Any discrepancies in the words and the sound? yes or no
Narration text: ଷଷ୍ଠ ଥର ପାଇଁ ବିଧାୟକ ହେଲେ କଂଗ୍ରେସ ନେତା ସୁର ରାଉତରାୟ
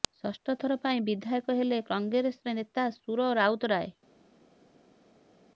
no